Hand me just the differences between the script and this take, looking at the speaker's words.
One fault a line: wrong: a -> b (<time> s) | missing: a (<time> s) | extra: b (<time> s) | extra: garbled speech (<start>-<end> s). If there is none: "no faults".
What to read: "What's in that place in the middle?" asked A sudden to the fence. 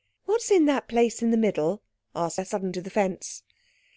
no faults